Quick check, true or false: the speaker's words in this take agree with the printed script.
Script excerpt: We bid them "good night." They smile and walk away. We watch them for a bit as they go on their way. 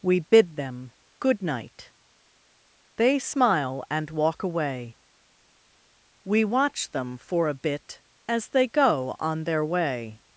true